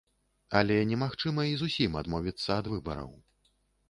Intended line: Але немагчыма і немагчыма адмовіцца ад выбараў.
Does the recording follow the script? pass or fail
fail